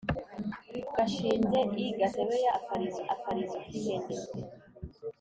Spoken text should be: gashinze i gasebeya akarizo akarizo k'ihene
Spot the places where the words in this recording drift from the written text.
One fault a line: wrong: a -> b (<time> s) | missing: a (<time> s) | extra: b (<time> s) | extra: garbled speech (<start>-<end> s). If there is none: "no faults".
no faults